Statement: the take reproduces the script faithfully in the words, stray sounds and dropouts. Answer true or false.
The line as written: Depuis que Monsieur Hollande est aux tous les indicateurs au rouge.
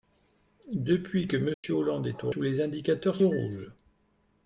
false